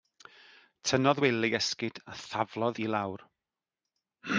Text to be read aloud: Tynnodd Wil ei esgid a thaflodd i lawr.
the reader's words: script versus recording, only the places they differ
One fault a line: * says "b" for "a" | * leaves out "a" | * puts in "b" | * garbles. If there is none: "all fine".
all fine